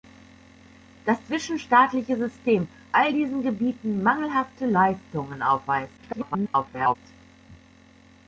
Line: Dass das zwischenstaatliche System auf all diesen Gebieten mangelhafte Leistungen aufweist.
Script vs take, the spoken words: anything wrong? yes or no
yes